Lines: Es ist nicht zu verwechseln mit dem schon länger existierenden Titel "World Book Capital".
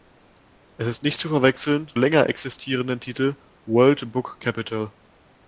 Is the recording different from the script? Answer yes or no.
yes